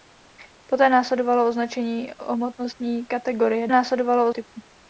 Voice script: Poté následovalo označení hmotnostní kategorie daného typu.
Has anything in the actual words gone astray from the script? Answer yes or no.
yes